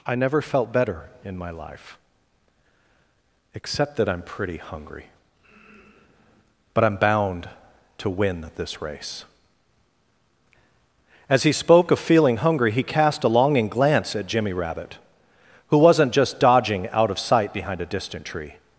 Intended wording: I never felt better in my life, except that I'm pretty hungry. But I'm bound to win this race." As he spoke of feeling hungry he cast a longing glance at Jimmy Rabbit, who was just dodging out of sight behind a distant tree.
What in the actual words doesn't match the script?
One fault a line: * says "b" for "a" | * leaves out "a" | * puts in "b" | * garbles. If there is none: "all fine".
* says "wasn't" for "was"